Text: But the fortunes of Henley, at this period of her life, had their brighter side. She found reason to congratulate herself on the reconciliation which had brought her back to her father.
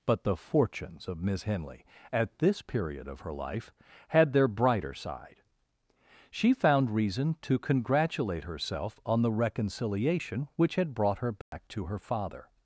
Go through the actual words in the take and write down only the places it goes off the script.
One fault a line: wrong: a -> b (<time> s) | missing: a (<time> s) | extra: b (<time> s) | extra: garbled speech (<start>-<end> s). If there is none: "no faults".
extra: Miss (1.2 s)